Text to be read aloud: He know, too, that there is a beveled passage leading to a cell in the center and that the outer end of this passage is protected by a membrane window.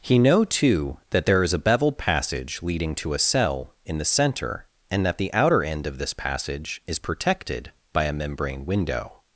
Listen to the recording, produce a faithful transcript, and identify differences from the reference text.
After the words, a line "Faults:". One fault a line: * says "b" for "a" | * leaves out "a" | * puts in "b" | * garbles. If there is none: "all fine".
He know, too, that there is a beveled passage leading to a cell in the center and that the outer end of this passage is protected by a membrane window.
Faults:
all fine